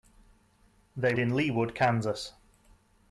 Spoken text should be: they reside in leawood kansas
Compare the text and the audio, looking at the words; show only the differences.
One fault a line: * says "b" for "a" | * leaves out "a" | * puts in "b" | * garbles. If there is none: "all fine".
* leaves out "reside"